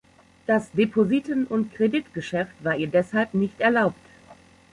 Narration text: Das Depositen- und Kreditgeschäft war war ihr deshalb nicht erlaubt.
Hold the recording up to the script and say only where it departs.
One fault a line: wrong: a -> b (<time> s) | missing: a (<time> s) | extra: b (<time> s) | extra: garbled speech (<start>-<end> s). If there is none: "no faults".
missing: war (2.8 s)